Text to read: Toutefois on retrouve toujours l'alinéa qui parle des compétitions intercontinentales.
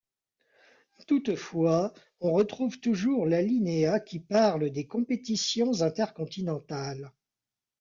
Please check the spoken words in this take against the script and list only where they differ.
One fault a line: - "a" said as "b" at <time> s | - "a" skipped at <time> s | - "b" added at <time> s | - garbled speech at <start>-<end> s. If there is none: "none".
none